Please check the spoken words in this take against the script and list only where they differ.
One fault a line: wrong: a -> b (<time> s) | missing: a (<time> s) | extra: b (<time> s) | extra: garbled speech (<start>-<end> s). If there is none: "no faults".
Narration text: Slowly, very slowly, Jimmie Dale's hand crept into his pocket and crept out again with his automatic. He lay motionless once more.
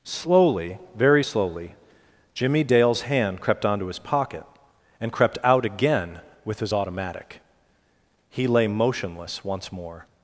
wrong: into -> onto (3.6 s)